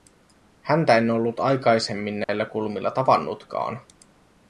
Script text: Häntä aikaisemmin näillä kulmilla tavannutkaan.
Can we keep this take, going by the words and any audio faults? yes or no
no